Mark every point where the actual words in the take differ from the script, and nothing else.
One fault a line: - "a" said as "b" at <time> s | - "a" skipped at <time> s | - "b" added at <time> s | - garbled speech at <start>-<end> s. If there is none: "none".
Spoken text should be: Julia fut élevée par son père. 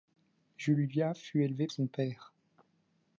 - "par" skipped at 1.7 s